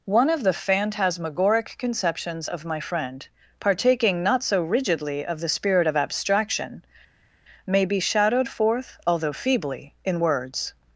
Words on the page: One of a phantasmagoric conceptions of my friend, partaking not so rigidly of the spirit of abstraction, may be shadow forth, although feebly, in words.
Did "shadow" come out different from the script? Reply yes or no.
yes